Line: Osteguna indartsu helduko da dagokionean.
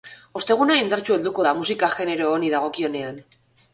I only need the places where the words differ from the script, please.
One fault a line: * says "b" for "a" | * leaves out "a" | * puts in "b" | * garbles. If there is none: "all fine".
* puts in "musika genero honi"